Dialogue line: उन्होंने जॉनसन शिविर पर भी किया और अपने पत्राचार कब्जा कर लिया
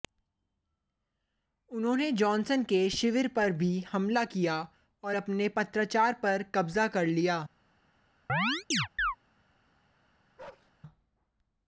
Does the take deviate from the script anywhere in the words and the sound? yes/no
yes